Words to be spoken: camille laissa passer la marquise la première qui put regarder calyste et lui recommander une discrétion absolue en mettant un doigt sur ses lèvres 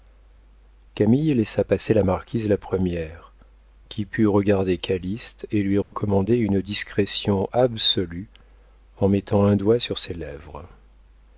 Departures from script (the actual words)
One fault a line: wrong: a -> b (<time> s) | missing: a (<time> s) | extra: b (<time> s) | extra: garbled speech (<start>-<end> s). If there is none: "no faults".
no faults